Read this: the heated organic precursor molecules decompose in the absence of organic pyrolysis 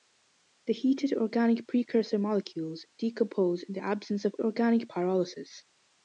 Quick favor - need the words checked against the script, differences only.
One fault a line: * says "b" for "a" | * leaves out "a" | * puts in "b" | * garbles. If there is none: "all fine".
all fine